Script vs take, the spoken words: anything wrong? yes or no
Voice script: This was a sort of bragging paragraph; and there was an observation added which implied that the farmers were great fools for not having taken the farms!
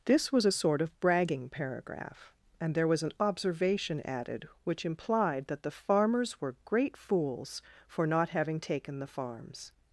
no